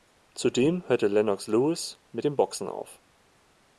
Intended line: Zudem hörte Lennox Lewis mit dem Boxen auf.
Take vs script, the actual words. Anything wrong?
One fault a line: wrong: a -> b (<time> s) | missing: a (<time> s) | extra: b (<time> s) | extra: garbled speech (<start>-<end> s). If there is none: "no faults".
no faults